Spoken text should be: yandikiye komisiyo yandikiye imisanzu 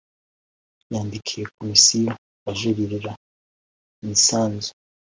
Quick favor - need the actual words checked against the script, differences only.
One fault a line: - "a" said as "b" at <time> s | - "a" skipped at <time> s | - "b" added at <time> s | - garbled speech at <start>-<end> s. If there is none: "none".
- "yandikiye" said as "ajuririra" at 2.5 s